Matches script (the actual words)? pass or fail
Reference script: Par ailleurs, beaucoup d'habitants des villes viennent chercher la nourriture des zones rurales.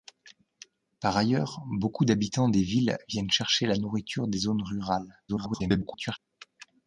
fail